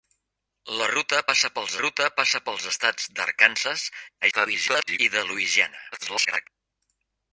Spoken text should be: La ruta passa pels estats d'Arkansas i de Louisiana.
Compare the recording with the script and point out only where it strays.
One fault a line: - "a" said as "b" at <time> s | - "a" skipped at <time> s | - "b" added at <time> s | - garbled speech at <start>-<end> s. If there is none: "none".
- "ruta passa pels" added at 1.8 s
- garbled speech at 4.2-5.0 s
- garbled speech at 5.9-6.5 s